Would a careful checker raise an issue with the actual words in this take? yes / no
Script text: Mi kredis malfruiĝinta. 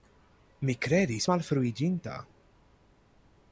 no